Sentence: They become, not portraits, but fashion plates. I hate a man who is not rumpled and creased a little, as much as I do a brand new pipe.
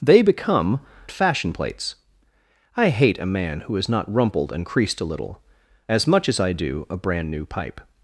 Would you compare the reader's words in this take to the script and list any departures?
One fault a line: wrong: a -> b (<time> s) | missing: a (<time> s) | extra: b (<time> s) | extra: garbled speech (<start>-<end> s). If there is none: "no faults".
missing: not portraits but (0.8 s)